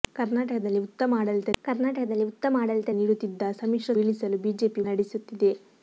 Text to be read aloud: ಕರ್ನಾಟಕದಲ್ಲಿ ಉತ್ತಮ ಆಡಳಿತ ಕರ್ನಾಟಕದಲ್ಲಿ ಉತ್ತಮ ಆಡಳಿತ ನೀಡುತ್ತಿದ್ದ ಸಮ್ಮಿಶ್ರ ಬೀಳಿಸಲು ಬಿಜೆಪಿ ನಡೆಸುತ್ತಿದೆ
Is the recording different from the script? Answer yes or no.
no